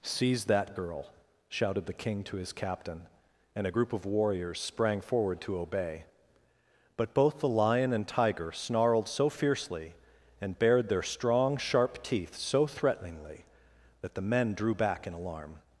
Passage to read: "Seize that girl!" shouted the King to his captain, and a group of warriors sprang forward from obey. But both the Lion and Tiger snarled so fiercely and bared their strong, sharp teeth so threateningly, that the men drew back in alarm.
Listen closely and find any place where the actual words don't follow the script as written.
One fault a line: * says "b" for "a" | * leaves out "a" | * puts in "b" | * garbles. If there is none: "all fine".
* says "to" for "from"